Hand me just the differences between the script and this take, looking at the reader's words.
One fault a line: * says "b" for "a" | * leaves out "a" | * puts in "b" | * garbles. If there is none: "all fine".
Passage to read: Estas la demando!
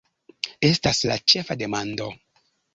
* puts in "ĉefa"